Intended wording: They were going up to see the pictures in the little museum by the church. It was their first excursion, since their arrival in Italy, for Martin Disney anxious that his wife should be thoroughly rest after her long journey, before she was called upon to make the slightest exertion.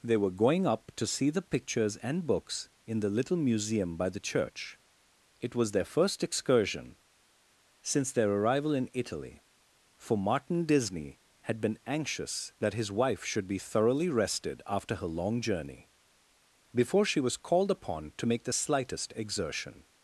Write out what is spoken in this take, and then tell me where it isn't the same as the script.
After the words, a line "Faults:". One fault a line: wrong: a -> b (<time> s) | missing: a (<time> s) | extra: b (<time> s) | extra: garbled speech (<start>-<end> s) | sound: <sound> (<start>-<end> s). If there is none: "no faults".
They were going up to see the pictures and books in the little museum by the church. It was their first excursion, since their arrival in Italy, for Martin Disney had been anxious that his wife should be thoroughly rested after her long journey, before she was called upon to make the slightest exertion.
Faults:
extra: and books (2.0 s)
extra: had been (11.4 s)
wrong: rest -> rested (14.1 s)